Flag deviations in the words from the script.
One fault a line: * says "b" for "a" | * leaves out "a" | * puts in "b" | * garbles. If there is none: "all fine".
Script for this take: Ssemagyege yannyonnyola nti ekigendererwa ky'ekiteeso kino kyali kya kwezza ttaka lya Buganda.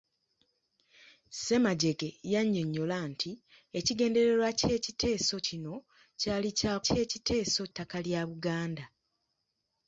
* says "ky'ekiteeso" for "kwezza"